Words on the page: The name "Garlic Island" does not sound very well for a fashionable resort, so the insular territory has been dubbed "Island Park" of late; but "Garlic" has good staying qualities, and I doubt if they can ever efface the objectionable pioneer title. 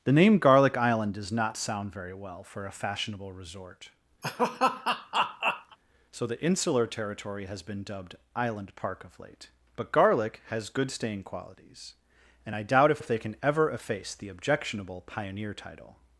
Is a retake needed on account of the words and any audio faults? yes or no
yes